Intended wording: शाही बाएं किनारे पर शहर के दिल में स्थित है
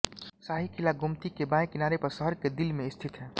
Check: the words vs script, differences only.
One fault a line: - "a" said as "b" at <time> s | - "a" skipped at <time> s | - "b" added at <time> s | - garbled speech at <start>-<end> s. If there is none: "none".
- "किला गोमती के" added at 0.7 s